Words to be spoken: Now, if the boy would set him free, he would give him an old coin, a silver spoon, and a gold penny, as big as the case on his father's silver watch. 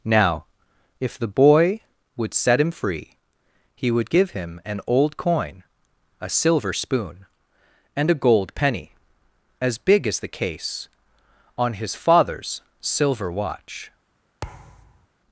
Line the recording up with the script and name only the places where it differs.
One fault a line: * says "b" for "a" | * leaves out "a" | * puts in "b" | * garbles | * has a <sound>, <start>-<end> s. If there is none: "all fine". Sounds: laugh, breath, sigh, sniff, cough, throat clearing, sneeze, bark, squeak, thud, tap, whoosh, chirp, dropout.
* has a thud, 14.4-15.1 s